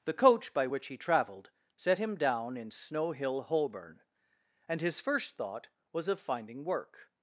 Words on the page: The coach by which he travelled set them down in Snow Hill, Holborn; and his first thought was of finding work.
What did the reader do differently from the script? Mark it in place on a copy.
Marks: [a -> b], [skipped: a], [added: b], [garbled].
The coach by which he travelled set [them -> him] down in Snow Hill, Holborn; and his first thought was of finding work.